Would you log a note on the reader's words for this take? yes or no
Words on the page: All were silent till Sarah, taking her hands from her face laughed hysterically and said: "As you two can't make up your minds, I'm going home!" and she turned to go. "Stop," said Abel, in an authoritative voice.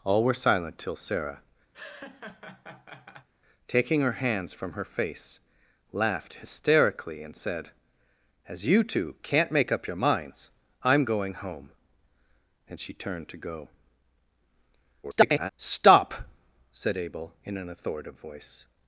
yes